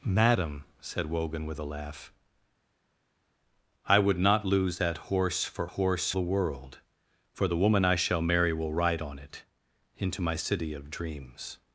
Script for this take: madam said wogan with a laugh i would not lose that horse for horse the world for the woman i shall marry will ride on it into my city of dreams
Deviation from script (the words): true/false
false